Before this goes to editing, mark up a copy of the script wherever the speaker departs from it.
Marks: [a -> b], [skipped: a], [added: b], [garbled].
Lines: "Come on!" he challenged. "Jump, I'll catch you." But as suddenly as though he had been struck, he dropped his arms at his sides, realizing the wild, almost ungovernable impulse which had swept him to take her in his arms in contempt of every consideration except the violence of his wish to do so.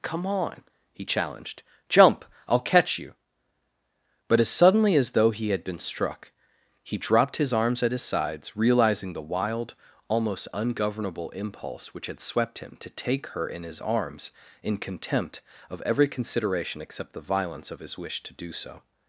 "Come on!" he challenged. "Jump, I'll catch you." But as suddenly as though he had been struck, he dropped his arms at his sides, realizing the wild, almost ungovernable impulse which had swept him to take her in his arms in contempt of every consideration except the violence of his wish to do so.